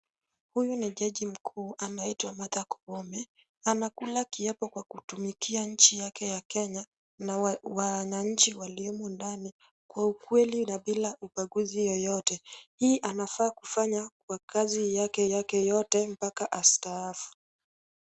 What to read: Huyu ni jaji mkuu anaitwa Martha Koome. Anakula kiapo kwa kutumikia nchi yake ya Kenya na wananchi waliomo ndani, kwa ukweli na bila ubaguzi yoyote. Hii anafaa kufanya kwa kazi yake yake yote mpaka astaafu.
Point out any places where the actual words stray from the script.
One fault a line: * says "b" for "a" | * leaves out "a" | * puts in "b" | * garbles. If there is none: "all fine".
all fine